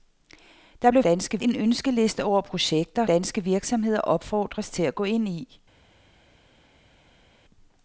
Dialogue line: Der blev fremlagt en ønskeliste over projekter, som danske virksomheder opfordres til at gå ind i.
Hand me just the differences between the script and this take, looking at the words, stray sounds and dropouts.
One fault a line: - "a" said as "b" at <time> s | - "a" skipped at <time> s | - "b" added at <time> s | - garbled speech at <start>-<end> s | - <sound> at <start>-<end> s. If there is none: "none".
- "fremlagt" said as "danske" at 1.0 s
- "som" skipped at 3.1 s